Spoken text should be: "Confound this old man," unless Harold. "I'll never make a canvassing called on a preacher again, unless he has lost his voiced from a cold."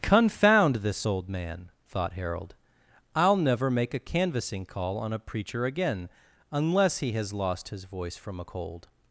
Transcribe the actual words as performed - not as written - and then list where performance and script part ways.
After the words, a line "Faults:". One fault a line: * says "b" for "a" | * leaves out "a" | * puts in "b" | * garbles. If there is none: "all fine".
"Confound this old man," thought Harold. "I'll never make a canvassing call on a preacher again, unless he has lost his voice from a cold."
Faults:
* says "thought" for "unless"
* says "call" for "called"
* says "voice" for "voiced"